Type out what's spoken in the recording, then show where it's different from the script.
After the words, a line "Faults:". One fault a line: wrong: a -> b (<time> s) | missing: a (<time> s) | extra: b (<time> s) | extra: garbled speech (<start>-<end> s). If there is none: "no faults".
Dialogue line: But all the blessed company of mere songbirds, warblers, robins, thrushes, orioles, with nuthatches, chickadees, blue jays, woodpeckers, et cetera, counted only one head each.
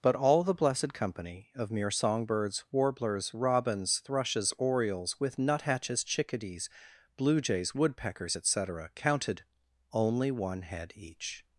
But all the blessed company of mere songbirds, warblers, robins, thrushes, orioles, with nuthatches, chickadees, blue jays, woodpeckers, et cetera, counted only one head each.
Faults:
no faults